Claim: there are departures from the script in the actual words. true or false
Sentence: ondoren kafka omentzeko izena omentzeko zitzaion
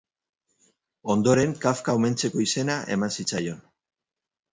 true